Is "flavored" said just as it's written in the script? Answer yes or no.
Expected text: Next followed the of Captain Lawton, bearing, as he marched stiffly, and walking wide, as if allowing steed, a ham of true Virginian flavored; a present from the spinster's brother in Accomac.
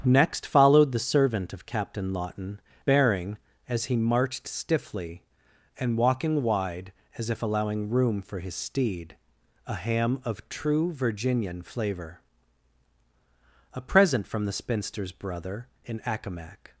no